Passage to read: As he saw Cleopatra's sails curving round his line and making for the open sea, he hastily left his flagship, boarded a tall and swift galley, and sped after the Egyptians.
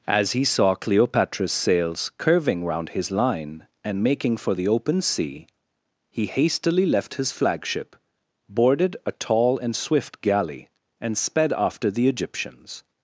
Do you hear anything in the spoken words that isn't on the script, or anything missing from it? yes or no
no